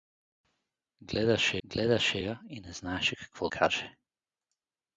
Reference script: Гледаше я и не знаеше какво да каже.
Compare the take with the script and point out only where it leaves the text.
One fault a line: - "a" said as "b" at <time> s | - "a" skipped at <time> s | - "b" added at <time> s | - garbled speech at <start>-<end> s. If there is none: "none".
- "гледаше" added at 1.6 s
- "да" skipped at 3.5 s